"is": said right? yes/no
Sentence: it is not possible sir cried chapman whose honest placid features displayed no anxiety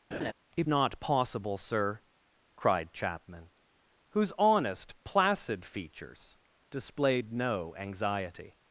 no